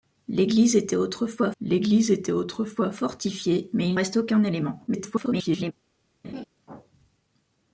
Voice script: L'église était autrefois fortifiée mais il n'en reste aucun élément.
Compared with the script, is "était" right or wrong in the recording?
right